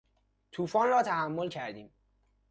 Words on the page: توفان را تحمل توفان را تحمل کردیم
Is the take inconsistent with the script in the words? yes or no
yes